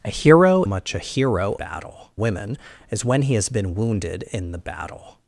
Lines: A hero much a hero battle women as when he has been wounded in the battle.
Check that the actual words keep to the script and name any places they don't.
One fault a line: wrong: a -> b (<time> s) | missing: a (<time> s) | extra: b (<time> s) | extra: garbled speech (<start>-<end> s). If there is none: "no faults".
no faults